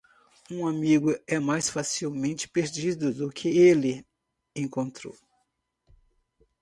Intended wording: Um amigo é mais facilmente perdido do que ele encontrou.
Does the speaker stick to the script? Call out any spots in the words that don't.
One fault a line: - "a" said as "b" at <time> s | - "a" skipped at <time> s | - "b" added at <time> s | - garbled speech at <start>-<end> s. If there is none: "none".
none